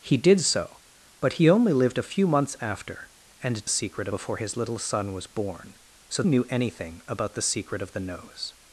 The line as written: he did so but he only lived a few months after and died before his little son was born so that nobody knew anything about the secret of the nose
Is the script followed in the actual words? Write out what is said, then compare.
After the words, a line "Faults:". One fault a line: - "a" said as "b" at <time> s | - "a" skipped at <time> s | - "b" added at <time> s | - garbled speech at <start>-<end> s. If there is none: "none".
he did so but he only lived a few months after and secret before his little son was born so knew anything about the secret of the nose
Faults:
- "died" said as "secret" at 3.7 s
- "that nobody" skipped at 6.2 s